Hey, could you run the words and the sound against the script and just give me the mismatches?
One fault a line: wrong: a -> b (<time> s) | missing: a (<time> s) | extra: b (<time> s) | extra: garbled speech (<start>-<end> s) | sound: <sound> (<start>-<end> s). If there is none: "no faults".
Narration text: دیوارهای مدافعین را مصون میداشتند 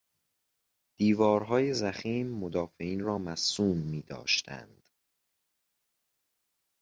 extra: ضخیم (1.7 s)